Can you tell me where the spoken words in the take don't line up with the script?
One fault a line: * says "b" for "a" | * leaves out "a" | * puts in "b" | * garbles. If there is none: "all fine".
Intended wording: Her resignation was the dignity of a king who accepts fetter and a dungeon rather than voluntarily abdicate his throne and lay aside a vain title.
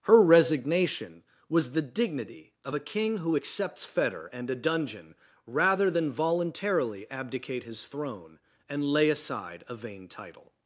all fine